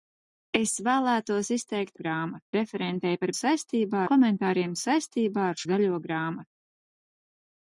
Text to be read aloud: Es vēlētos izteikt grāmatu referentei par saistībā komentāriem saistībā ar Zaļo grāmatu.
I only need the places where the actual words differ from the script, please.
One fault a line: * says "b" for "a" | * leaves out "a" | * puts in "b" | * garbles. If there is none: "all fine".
all fine